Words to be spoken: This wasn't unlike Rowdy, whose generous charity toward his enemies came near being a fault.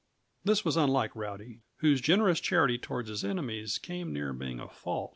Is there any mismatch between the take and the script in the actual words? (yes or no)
yes